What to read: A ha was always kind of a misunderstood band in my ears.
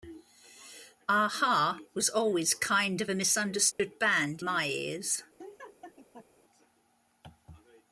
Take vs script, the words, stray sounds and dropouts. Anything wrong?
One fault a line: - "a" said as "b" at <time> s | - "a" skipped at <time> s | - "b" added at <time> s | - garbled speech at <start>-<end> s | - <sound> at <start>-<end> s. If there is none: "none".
- dropout at 3.7-3.8 s
- "in" skipped at 4.4 s
- laugh at 5.4-6.3 s